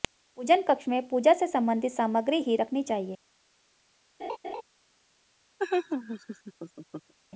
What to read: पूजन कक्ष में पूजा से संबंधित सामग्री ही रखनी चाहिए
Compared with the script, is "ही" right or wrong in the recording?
right